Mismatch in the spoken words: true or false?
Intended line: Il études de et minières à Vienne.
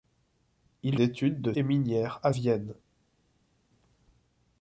false